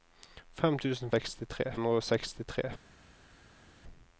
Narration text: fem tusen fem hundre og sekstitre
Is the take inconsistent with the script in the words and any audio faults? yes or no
yes